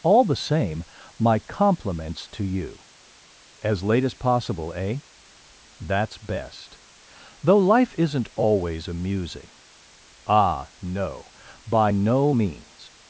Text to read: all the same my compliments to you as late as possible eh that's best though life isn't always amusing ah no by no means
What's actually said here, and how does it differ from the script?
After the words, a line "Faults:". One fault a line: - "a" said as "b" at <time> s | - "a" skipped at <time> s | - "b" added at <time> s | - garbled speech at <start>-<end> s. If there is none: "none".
all the same my compliments to you as late as possible eh that's best though life isn't always amusing ah no by no means
Faults:
none